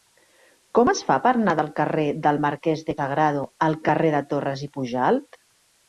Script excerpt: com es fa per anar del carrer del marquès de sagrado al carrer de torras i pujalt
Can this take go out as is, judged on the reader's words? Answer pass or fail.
pass